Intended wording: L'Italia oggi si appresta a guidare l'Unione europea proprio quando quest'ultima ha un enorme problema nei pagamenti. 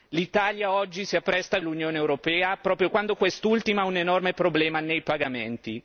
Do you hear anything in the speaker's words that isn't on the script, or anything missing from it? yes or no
yes